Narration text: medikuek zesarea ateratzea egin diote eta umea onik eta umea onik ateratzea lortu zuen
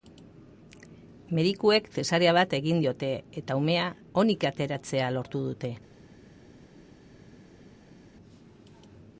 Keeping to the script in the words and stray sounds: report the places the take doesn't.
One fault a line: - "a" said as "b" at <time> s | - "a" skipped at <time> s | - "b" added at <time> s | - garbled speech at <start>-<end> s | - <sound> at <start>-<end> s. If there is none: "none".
- "ateratzea" said as "bat" at 2.4 s
- "eta umea onik" skipped at 4.5 s
- "zuen" said as "dute" at 5.5 s